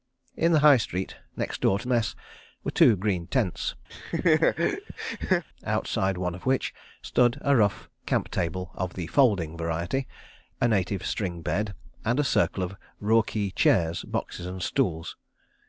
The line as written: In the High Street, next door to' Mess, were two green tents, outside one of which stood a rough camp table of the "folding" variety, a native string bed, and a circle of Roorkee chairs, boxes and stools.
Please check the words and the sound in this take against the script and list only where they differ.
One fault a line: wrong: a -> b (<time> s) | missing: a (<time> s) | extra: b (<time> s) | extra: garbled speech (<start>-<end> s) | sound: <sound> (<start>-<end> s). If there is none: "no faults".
sound: laugh (3.9-5.4 s)